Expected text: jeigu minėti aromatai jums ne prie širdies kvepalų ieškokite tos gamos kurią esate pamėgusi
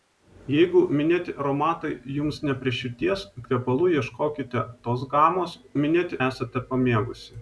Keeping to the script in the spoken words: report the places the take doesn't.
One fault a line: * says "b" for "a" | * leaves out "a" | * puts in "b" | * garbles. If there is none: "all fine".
* says "minėti" for "kurią"